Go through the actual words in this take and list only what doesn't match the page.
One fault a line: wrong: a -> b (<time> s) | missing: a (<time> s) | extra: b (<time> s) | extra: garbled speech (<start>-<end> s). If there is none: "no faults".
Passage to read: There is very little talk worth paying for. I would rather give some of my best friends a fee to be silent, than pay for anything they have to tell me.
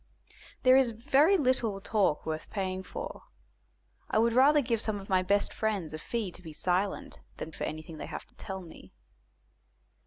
missing: pay (7.5 s)